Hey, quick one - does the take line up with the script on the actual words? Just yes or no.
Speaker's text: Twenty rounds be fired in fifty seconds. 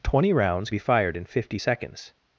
yes